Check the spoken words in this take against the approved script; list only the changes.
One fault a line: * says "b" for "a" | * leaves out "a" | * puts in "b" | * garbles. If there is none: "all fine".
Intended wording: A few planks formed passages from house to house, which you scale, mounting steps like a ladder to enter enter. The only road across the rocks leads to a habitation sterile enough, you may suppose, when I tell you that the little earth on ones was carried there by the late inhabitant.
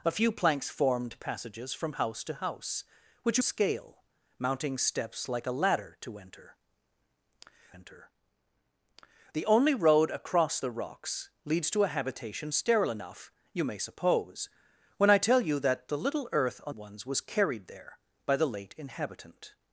all fine